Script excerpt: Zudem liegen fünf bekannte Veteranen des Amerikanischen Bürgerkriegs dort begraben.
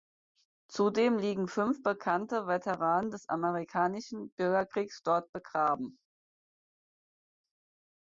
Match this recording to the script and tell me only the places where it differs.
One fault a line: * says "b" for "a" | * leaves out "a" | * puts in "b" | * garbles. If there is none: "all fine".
all fine